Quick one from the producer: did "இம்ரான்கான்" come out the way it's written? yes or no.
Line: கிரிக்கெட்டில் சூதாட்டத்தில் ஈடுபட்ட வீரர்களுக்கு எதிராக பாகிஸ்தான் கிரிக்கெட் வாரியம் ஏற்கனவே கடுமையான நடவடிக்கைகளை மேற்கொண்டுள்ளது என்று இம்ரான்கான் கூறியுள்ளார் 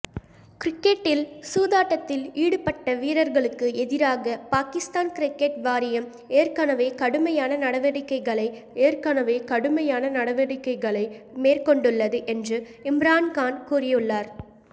yes